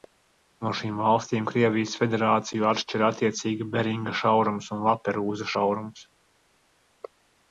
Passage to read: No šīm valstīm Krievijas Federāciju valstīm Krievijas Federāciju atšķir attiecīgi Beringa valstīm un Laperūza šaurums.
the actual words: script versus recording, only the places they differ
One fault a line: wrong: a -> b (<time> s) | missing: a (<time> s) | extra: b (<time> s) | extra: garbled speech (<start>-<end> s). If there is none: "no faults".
missing: valstīm Krievijas Federāciju (2.7 s)
wrong: valstīm -> šaurums (4.2 s)